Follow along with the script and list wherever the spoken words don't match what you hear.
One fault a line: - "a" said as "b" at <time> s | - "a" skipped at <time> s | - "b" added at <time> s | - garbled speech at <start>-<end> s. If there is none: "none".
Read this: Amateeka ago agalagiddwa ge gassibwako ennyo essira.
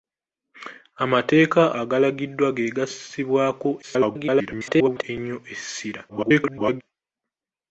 - "ago" skipped at 1.6 s
- garbled speech at 3.8-5.0 s
- garbled speech at 6.1-6.8 s